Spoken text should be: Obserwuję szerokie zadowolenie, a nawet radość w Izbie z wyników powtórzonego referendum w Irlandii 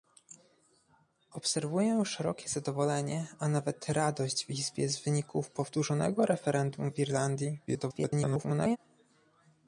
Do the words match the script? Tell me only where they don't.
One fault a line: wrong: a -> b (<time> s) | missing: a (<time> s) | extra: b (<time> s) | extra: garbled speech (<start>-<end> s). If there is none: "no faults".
extra: garbled speech (7.7-8.8 s)